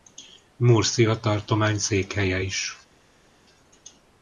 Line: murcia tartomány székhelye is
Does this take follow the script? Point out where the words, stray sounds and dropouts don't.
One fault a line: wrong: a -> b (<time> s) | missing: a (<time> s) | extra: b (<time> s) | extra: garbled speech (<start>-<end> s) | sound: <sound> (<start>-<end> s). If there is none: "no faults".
no faults